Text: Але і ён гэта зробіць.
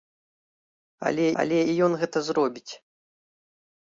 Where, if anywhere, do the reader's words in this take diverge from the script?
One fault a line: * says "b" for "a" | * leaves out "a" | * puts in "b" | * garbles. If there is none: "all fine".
* puts in "але"